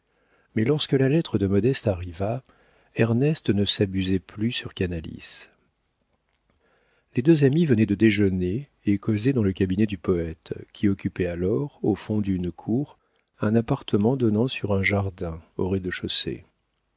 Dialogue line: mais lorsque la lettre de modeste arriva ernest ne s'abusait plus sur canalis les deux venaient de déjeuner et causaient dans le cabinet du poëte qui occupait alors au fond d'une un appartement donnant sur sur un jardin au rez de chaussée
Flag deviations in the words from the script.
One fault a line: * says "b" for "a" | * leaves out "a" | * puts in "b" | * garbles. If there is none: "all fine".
* puts in "amis"
* puts in "cour"
* leaves out "sur"